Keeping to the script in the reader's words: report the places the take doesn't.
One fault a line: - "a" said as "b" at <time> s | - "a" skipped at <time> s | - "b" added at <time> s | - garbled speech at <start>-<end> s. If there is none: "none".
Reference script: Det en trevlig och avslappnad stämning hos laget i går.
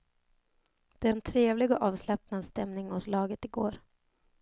none